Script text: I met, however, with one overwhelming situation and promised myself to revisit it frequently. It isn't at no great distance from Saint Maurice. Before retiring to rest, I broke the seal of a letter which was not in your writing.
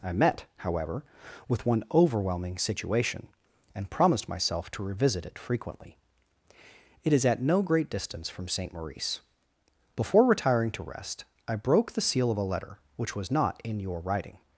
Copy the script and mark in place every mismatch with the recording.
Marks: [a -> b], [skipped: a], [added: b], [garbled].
I met, however, with one overwhelming situation and promised myself to revisit it frequently. It [isn't -> is] at no great distance from Saint Maurice. Before retiring to rest, I broke the seal of a letter which was not in your writing.